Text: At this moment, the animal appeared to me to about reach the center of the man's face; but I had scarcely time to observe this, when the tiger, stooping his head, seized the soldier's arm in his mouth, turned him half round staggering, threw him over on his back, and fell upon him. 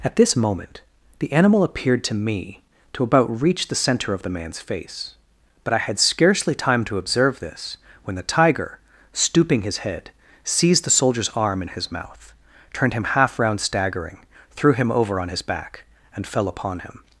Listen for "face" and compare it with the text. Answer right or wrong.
right